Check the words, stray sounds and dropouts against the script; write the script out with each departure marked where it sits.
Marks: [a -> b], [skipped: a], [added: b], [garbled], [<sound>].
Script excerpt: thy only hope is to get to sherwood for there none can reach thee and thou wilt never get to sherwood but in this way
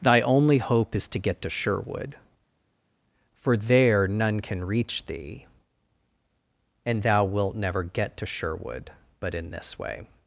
thy only hope is to get to sherwood for there none can reach thee and thou wilt never get to sherwood but in this way